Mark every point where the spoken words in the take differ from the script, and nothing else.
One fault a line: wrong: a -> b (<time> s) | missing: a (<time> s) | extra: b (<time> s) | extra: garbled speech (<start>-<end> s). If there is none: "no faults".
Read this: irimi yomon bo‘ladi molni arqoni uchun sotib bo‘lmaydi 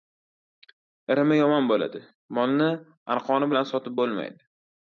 wrong: uchun -> bilan (3.5 s)